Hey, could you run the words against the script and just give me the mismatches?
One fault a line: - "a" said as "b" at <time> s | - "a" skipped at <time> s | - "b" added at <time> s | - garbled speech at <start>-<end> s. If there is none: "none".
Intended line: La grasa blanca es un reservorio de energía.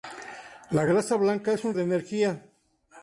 - "reservorio" skipped at 1.7 s